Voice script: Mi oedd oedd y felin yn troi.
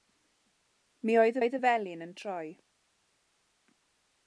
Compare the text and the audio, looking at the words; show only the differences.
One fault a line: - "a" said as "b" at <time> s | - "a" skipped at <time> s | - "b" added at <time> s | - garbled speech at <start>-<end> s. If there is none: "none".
none